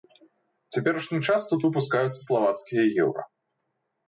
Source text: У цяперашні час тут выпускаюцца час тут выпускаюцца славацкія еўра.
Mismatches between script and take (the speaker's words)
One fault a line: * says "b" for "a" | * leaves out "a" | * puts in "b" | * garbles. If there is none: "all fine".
* leaves out "час тут выпускаюцца"